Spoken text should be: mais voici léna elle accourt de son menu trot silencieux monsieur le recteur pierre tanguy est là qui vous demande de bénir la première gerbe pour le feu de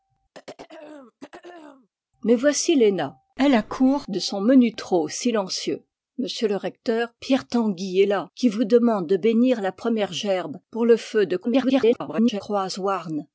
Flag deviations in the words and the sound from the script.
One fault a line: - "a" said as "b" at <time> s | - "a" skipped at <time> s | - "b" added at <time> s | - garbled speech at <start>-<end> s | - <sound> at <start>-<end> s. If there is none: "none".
- throat clearing at 0.3-1.9 s
- garbled speech at 11.4-12.4 s